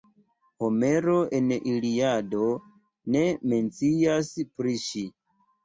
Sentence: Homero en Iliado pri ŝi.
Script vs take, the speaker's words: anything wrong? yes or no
yes